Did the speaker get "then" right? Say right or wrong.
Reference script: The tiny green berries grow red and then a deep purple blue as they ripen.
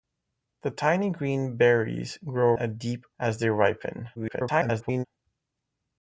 wrong